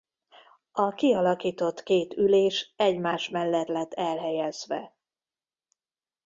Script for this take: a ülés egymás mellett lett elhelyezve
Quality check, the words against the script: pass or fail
fail